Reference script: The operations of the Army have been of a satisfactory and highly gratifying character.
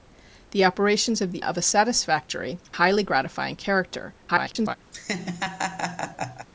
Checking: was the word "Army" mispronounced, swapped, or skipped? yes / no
yes